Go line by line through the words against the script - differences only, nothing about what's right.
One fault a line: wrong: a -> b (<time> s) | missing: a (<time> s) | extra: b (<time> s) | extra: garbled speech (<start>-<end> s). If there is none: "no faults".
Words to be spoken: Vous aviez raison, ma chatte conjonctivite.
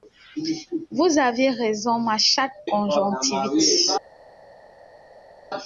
no faults